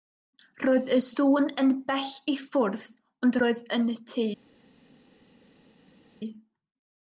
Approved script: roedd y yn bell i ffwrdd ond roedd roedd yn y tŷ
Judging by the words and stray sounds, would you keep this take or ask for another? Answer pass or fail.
fail